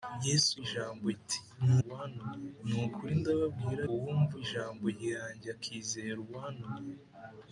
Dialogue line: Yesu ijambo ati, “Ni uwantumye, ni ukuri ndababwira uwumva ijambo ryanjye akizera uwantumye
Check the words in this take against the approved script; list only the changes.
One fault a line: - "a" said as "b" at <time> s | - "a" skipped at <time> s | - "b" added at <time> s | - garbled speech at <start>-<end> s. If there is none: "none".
none